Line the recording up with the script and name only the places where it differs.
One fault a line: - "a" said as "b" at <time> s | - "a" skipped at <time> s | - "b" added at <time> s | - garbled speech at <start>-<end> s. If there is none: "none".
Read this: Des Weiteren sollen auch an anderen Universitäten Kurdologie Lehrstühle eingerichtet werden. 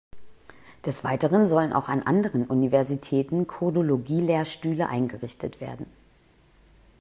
none